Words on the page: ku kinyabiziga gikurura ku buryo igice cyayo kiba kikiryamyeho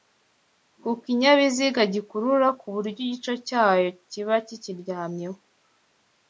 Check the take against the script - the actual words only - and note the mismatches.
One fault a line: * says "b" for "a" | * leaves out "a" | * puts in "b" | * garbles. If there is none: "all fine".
all fine